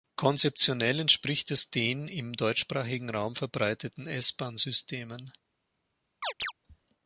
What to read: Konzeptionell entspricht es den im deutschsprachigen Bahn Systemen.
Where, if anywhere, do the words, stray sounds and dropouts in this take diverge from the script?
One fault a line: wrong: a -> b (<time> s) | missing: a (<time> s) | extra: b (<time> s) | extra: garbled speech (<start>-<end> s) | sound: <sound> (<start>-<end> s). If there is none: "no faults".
extra: Raum verbreiteten S (3.1 s)
sound: chirp (6.2-6.5 s)